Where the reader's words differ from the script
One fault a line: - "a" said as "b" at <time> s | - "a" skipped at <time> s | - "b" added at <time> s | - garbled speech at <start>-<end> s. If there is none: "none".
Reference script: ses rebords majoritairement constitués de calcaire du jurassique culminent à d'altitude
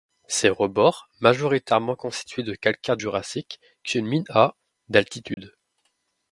- "du" skipped at 3.0 s